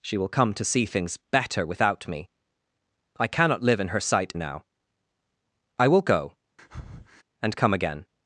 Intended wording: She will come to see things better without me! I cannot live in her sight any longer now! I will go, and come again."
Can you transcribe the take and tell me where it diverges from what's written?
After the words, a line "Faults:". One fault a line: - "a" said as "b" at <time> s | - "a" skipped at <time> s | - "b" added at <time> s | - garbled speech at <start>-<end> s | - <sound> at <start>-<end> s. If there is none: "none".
She will come to see things better without me! I cannot live in her sight now! I will go, and come again."
Faults:
- "any longer" skipped at 4.3 s
- breath at 6.6-7.2 s